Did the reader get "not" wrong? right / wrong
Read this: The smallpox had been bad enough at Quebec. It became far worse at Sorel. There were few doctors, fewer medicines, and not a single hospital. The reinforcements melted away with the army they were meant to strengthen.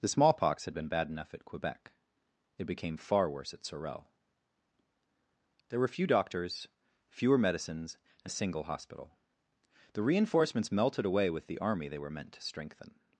wrong